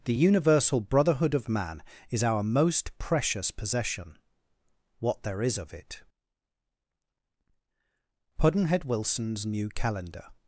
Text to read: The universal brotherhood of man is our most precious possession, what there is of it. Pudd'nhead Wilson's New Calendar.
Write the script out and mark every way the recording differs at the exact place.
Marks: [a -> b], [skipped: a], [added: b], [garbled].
The universal brotherhood of man is our most precious possession, what there is of it. Pudd'nhead Wilson's New Calendar.